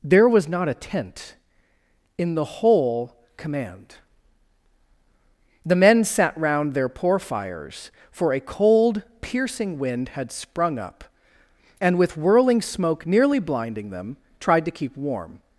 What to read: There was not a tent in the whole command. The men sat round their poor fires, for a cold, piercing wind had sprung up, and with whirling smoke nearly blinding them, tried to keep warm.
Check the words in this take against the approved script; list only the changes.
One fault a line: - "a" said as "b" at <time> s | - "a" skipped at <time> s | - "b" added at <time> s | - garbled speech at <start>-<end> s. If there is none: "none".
none